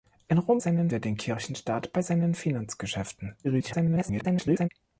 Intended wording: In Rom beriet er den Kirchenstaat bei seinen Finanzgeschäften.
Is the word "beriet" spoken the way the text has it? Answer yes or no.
no